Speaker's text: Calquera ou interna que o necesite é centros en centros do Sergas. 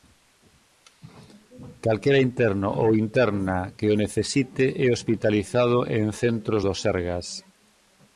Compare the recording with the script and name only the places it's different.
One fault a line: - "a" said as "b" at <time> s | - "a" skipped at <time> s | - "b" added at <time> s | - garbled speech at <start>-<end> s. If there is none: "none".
- "interno" added at 2.3 s
- "centros" said as "hospitalizado" at 5.0 s